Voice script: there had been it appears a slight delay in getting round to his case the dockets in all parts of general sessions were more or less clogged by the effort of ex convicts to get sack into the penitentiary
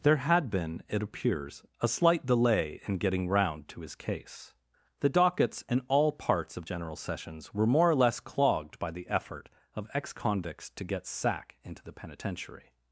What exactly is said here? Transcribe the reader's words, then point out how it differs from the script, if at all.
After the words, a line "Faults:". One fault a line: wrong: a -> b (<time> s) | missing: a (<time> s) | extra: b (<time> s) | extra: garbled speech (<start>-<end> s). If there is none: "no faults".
there had been it appears a slight delay in getting round to his case the dockets in all parts of general sessions were more or less clogged by the effort of ex convicts to get sack into the penitentiary
Faults:
no faults